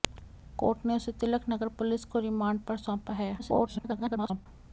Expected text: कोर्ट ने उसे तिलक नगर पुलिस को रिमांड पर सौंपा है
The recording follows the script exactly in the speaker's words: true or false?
false